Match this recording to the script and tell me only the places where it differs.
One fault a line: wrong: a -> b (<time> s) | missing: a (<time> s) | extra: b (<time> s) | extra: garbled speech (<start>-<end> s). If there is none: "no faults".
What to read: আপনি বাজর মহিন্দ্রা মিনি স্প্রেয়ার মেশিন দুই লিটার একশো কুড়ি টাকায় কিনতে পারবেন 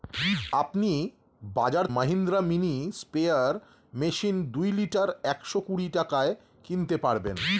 no faults